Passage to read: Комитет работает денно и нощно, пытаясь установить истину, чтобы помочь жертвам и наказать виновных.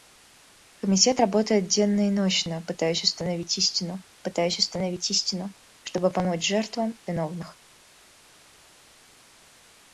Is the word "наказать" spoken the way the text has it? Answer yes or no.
no